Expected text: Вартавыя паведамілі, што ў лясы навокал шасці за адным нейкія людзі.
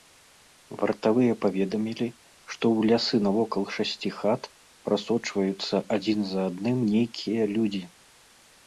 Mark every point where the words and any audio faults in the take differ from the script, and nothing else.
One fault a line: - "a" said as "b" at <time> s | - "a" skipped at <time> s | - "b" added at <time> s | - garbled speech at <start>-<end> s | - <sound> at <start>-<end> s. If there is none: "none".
- "хат прасочваюцца адзін" added at 4.2 s